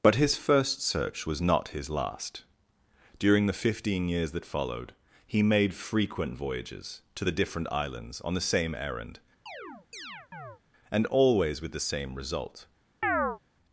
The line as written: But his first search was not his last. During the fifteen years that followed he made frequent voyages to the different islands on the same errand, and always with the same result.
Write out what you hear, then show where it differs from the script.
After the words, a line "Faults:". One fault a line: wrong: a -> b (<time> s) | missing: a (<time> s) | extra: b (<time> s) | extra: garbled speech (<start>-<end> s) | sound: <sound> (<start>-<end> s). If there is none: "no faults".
But his first search was not his last. During the fifteen years that followed he made frequent voyages to the different islands on the same errand, and always with the same result.
Faults:
sound: chirp (9.5-10.6 s)
sound: chirp (13.0-13.4 s)